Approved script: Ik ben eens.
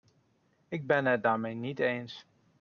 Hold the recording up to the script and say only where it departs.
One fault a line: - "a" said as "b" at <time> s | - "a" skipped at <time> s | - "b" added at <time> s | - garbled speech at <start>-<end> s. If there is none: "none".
- "het daarmee niet" added at 1.1 s